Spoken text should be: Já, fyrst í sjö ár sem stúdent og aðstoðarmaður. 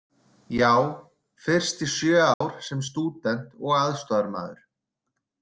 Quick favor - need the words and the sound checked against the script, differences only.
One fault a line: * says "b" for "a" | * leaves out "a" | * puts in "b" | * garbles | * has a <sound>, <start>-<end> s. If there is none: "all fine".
* has a dropout, 2.3-2.4 s